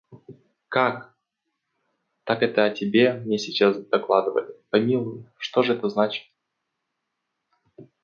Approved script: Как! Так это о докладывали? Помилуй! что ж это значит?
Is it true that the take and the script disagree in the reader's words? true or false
true